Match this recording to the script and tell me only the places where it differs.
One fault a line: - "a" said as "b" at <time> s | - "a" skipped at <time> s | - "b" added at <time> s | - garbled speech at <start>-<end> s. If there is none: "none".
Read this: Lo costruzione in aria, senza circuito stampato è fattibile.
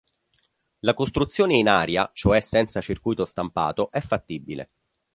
- "Lo" said as "La" at 0.8 s
- "cioè" added at 2.1 s